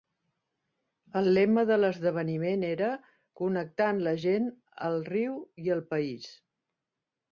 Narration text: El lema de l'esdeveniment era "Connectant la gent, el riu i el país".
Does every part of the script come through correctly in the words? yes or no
yes